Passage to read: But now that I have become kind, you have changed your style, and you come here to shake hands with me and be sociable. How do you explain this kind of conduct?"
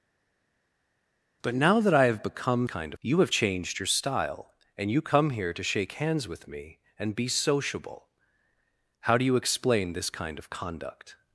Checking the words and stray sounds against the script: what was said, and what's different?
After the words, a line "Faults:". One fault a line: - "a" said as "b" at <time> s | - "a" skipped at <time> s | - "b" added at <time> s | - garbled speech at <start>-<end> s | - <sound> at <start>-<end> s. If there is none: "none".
But now that I have become kind, you have changed your style, and you come here to shake hands with me and be sociable. How do you explain this kind of conduct?"
Faults:
none